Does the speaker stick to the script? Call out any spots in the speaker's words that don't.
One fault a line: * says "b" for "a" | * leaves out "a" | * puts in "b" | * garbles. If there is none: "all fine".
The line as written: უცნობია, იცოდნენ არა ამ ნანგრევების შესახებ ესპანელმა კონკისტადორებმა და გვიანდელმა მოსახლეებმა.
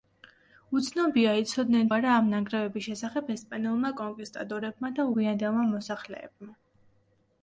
all fine